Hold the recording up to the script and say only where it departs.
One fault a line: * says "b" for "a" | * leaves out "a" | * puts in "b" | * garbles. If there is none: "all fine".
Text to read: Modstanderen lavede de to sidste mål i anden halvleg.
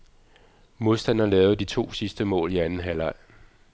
all fine